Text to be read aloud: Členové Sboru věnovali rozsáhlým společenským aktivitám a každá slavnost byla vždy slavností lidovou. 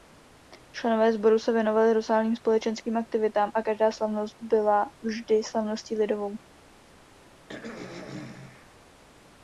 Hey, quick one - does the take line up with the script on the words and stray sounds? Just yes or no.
no